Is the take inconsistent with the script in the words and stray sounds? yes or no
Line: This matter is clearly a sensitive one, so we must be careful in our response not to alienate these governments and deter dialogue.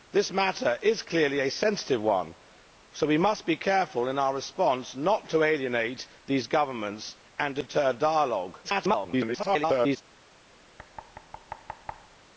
yes